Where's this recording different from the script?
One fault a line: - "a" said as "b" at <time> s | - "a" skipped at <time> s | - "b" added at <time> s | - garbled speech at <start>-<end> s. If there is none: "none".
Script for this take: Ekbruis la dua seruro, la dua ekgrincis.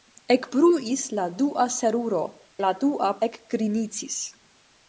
none